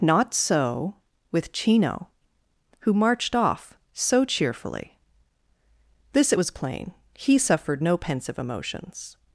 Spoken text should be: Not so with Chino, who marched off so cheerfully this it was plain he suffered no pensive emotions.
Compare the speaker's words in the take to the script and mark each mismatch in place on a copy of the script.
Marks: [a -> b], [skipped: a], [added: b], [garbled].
Not so with Chino, who marched off so cheerfully this it was plain he suffered no pensive emotions.